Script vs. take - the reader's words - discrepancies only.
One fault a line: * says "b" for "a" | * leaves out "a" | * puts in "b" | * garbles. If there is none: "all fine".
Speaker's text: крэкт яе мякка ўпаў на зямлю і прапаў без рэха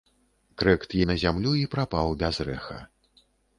* leaves out "яе мякка ўпаў"